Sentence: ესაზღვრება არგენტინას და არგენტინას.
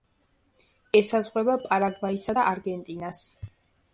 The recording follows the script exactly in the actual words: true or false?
false